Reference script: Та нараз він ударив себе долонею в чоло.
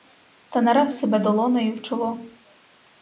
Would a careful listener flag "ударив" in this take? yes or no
yes